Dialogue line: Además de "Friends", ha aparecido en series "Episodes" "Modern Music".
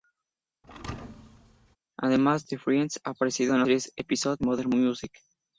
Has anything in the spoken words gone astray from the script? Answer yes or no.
no